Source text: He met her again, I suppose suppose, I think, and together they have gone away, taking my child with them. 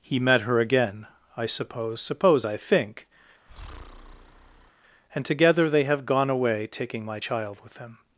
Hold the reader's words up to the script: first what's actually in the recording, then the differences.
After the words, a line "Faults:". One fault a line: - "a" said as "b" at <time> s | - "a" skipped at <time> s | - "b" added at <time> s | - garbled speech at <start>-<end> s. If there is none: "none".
He met her again, I suppose suppose, I think, and together they have gone away, taking my child with them.
Faults:
none